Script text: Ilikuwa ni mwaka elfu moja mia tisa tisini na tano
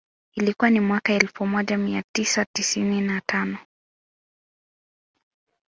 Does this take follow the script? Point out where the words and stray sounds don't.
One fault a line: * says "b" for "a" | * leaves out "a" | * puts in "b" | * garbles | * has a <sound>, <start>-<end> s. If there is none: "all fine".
all fine